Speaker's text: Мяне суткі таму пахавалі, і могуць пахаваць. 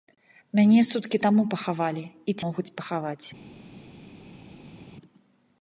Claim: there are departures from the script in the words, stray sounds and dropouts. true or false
false